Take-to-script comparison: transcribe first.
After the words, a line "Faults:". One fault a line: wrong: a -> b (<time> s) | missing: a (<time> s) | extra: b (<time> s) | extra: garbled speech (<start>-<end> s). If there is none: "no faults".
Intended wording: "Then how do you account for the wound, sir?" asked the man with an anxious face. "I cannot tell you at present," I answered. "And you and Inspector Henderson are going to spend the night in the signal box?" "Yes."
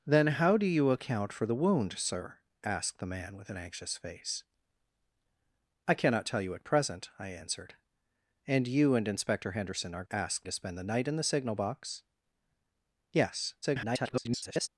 "Then how do you account for the wound, sir?" asked the man with an anxious face. "I cannot tell you at present," I answered. "And you and Inspector Henderson are asked to spend the night in the signal box?" "Yes." [garbled]
Faults:
wrong: going -> asked (10.1 s)
extra: garbled speech (13.6-14.7 s)